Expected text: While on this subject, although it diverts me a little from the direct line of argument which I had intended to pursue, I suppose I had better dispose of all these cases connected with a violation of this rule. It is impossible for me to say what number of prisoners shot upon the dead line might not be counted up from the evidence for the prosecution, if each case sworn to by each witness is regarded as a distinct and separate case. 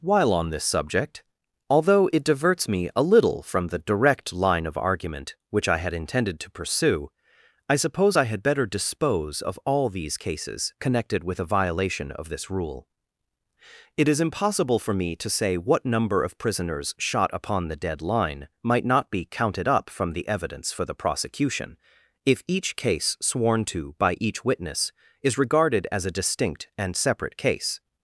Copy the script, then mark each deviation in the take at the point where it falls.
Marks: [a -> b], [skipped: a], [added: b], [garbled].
While on this subject, although it diverts me a little from the direct line of argument which I had intended to pursue, I suppose I had better dispose of all these cases connected with a violation of this rule. It is impossible for me to say what number of prisoners shot upon the dead line might not be counted up from the evidence for the prosecution, if each case sworn to by each witness is regarded as a distinct and separate case.